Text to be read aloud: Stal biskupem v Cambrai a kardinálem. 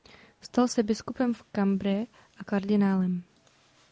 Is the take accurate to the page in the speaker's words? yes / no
no